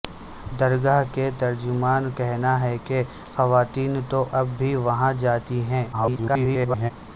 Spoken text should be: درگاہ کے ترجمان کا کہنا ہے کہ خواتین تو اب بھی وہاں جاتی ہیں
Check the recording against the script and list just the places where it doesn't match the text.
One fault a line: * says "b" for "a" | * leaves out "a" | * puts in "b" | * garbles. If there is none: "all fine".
* leaves out "کا"
* garbles